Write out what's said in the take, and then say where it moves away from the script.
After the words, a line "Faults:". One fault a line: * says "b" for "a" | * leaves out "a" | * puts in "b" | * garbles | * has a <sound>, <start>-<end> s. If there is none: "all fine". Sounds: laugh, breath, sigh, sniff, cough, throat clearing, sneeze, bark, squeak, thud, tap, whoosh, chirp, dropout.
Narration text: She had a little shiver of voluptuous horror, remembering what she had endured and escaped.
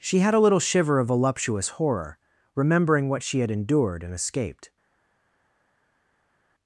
She had a little shiver of voluptuous horror, remembering what she had endured and escaped.
Faults:
all fine